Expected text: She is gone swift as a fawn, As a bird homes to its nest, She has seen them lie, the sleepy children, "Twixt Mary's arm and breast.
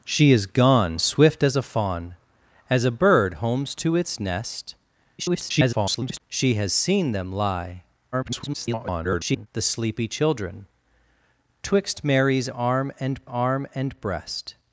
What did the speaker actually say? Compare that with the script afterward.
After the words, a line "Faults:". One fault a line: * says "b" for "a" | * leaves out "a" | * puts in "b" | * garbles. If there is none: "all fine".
She is gone swift as a fawn, As a bird homes to its nest, [garbled] She has seen them lie, [garbled] the sleepy children, "Twixt Mary's arm and arm and breast.
Faults:
* garbles
* garbles
* puts in "arm and"